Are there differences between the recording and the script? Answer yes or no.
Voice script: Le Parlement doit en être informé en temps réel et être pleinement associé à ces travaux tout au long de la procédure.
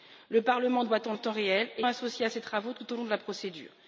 yes